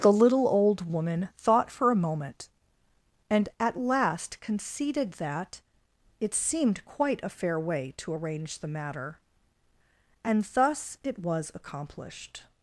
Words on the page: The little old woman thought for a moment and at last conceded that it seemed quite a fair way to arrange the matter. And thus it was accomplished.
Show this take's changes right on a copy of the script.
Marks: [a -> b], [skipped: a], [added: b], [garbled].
The little old woman thought for a moment and at last conceded that it seemed quite a fair way to arrange the matter. And thus it was accomplished.